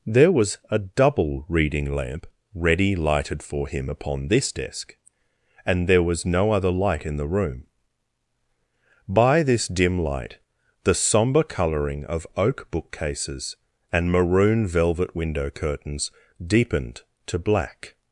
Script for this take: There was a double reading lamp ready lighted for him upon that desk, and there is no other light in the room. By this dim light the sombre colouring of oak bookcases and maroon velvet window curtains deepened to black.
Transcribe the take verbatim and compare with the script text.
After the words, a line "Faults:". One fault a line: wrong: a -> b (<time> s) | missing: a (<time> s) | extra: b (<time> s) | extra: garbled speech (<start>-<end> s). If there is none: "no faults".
There was a double reading lamp ready lighted for him upon this desk, and there was no other light in the room. By this dim light the sombre colouring of oak bookcases and maroon velvet window curtains deepened to black.
Faults:
wrong: that -> this (4.3 s)
wrong: is -> was (6.0 s)